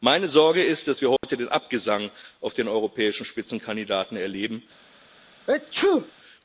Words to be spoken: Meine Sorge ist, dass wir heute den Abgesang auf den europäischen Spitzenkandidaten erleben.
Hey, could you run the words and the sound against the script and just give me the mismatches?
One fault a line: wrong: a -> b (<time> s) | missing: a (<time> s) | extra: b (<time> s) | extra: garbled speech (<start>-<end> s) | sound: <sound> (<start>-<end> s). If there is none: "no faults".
sound: dropout (1.2-1.2 s)
sound: sneeze (5.5-6.1 s)